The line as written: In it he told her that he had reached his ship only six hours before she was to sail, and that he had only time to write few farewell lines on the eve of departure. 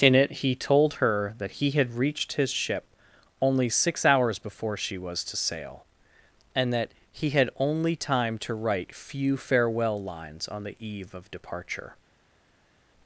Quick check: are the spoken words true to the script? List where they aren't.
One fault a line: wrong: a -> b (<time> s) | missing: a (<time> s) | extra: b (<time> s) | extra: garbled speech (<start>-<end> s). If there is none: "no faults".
no faults